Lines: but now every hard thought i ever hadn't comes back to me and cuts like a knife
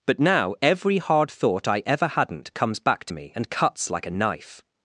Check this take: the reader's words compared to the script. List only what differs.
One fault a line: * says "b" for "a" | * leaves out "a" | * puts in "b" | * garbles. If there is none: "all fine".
all fine